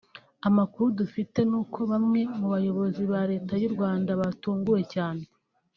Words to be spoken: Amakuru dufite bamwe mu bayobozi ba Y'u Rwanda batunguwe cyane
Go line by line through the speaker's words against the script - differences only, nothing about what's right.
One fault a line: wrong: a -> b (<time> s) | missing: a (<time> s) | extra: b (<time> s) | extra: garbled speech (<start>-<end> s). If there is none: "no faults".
extra: n'uko (1.5 s)
extra: Leta (3.3 s)